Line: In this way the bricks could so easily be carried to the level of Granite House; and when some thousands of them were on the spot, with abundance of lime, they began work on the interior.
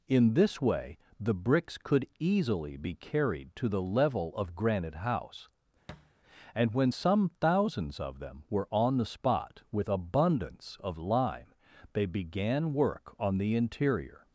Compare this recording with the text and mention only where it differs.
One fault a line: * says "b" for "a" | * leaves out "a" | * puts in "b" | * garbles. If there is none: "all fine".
* leaves out "so"